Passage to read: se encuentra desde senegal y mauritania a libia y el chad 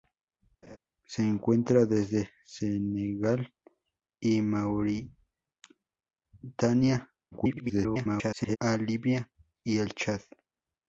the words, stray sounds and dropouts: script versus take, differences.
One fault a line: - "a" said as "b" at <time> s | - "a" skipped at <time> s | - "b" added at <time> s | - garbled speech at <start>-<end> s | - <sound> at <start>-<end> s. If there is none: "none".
- laugh at 0.6-0.8 s
- garbled speech at 7.3-8.6 s